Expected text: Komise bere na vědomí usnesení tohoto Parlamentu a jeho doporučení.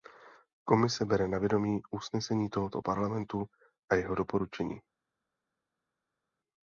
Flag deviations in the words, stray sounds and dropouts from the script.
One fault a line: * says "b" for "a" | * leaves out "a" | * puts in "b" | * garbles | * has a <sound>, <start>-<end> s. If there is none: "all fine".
all fine